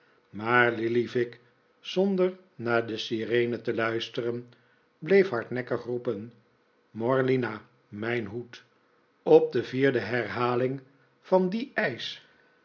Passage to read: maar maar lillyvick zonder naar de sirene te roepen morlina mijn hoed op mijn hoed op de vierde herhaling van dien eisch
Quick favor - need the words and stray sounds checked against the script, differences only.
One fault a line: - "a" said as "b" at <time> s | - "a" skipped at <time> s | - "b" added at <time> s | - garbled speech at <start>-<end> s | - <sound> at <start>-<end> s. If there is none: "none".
- "maar" skipped at 0.7 s
- "roepen morlina mijn hoed op" said as "luisteren bleef hardnekkig roepen morlina" at 3.7 s